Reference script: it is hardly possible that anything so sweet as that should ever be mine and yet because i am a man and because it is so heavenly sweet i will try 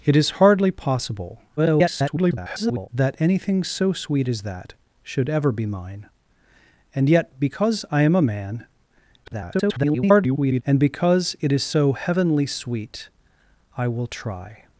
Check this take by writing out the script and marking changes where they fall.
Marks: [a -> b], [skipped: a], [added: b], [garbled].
it is hardly possible [garbled] that anything so sweet as that should ever be mine and yet because i am a man [garbled] and because it is so heavenly sweet i will try